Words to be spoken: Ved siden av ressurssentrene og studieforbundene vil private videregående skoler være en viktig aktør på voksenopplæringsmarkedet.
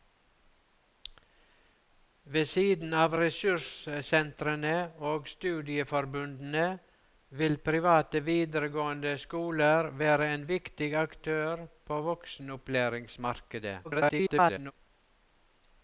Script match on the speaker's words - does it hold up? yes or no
no